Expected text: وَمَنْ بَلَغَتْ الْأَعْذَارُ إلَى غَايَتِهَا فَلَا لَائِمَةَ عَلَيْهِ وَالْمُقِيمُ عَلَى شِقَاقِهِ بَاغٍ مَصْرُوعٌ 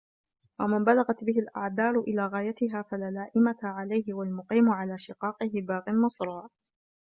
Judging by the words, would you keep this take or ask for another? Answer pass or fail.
fail